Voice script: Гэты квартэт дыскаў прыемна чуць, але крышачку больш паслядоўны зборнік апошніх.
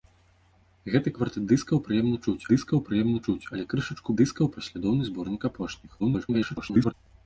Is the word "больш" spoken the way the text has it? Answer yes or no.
no